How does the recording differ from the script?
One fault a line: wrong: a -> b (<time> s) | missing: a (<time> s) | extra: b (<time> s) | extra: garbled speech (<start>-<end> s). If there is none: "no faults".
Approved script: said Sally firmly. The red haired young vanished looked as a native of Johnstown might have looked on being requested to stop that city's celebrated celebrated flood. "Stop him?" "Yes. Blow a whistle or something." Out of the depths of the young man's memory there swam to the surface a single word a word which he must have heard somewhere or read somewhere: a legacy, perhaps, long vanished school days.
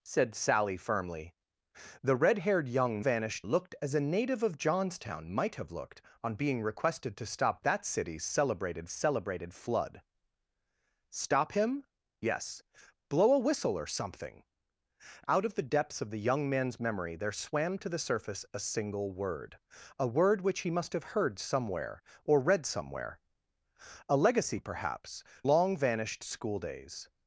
no faults